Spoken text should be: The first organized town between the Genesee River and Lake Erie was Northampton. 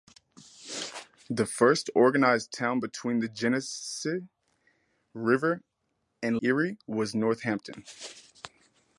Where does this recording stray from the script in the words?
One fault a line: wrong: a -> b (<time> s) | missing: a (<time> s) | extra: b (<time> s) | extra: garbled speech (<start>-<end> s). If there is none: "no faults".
missing: Lake (6.4 s)